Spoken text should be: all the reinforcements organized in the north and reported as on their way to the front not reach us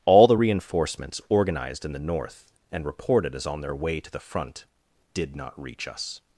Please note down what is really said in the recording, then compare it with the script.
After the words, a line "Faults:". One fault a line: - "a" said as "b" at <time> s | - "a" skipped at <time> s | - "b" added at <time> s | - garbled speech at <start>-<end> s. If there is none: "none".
all the reinforcements organized in the north and reported as on their way to the front did not reach us
Faults:
- "did" added at 5.1 s